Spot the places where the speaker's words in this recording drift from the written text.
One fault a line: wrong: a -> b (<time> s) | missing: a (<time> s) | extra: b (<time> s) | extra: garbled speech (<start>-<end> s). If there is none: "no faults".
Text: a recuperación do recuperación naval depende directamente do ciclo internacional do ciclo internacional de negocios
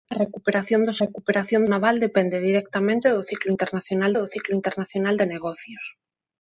no faults